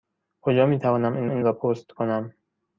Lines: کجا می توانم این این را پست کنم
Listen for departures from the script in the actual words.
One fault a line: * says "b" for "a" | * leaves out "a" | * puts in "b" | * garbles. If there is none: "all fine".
all fine